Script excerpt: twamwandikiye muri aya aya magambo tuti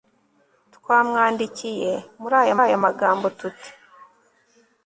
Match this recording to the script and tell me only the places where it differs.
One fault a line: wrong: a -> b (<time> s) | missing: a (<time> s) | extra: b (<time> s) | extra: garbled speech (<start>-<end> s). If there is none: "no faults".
no faults